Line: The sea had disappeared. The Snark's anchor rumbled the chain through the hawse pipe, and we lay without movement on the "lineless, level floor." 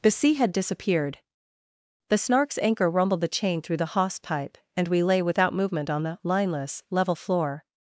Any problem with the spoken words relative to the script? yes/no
no